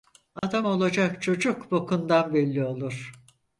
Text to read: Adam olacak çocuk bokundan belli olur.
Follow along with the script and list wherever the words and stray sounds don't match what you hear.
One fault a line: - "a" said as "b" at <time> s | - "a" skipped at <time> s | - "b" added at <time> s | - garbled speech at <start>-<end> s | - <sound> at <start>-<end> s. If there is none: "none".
- dropout at 0.4-0.4 s